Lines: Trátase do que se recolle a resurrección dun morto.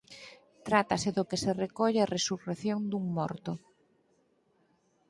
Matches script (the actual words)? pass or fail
pass